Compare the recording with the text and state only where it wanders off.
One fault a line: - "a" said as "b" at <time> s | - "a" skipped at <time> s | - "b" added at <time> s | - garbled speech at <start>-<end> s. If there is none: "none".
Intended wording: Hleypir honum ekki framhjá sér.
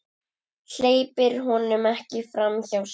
none